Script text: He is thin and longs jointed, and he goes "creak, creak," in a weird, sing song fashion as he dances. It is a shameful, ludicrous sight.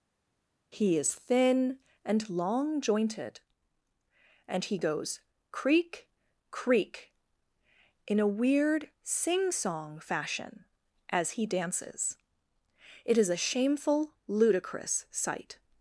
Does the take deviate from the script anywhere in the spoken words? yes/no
yes